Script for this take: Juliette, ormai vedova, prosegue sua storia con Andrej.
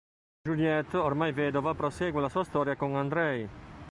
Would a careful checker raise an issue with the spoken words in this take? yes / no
yes